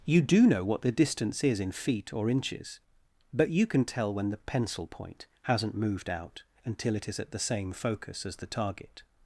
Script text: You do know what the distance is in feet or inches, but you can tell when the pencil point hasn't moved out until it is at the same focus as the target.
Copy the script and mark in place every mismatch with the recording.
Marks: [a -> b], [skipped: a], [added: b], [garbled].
You do know what the distance is in feet or inches, but you can tell when the pencil point hasn't moved out until it is at the same focus as the target.